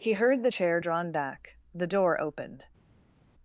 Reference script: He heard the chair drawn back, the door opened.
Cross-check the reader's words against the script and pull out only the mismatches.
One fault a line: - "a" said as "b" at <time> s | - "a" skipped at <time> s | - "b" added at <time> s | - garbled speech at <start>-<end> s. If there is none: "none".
none